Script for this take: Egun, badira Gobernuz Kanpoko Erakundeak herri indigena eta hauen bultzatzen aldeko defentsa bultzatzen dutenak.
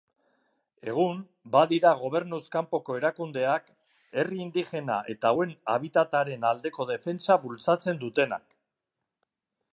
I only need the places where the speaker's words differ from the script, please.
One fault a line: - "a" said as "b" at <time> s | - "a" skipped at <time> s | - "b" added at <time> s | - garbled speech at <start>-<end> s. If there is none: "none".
- "bultzatzen" said as "habitataren" at 5.8 s